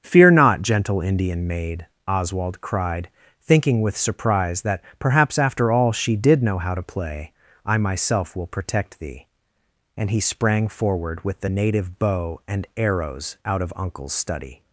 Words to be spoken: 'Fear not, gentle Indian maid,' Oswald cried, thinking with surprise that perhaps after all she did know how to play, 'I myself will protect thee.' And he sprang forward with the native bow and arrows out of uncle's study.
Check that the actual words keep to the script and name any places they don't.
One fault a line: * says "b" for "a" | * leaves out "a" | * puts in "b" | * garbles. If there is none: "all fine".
all fine